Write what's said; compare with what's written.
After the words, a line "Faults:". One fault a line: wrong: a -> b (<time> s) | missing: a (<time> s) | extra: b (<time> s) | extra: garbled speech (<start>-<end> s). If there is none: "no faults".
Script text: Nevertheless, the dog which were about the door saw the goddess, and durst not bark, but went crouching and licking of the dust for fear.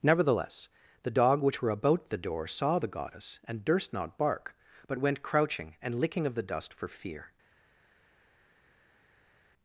Nevertheless, the dog which were about the door saw the goddess, and durst not bark, but went crouching and licking of the dust for fear.
Faults:
no faults